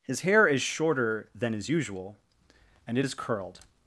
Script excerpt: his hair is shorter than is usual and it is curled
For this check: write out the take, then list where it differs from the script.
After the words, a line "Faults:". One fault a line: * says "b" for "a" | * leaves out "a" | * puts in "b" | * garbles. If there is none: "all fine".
his hair is shorter than is usual and it is curled
Faults:
all fine